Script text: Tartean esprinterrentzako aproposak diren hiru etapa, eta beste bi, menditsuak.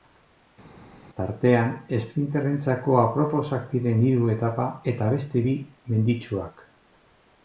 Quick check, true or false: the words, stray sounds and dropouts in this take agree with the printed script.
true